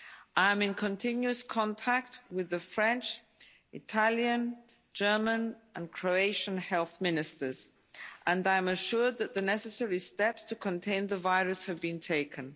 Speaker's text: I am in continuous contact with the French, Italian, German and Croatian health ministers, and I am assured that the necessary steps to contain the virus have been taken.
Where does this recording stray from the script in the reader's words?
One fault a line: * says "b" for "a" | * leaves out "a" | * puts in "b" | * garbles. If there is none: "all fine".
all fine